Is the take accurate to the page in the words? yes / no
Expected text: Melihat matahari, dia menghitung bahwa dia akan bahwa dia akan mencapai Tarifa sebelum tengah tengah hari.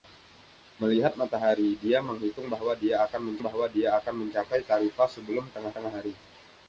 yes